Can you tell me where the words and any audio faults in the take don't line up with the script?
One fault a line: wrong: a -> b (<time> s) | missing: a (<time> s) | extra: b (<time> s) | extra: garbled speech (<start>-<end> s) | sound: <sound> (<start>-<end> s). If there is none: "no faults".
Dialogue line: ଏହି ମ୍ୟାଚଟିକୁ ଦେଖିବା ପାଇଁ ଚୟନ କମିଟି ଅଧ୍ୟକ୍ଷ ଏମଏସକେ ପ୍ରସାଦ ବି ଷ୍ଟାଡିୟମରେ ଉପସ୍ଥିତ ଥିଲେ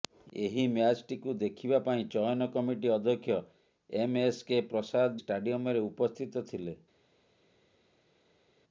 missing: ବି (5.2 s)